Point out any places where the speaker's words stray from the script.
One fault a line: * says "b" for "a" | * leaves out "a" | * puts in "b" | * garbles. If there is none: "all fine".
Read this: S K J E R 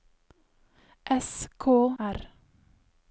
* leaves out "J E"